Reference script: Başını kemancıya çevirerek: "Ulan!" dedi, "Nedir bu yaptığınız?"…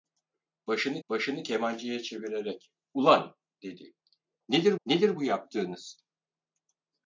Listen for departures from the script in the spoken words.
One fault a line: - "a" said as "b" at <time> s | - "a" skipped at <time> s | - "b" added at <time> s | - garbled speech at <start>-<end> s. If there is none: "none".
- "başını" added at 1.1 s
- "nedir" added at 4.9 s